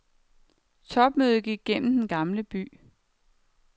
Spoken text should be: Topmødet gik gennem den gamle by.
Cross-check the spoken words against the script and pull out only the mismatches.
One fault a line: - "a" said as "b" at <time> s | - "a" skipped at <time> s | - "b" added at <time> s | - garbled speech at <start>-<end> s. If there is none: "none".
none